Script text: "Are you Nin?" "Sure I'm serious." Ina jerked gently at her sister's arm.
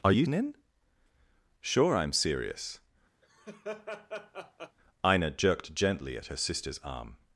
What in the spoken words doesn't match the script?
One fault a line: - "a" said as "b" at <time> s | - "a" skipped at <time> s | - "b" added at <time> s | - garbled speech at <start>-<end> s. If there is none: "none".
none